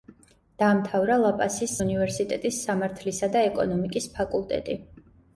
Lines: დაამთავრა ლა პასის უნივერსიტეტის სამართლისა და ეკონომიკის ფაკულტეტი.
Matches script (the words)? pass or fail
pass